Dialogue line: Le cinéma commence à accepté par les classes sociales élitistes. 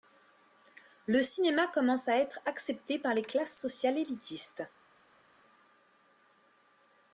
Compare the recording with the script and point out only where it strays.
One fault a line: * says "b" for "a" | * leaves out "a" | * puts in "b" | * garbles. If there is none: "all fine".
* puts in "être"